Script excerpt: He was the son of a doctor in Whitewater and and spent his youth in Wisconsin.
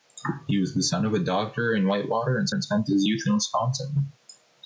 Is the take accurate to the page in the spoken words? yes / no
yes